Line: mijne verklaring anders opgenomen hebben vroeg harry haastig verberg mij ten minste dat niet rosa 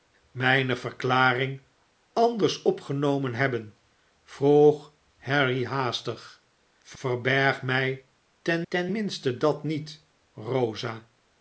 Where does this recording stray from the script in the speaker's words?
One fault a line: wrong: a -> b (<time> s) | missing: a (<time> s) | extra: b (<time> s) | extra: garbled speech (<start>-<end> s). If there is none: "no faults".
extra: ten (8.7 s)